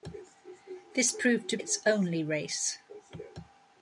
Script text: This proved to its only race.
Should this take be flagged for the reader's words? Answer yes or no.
no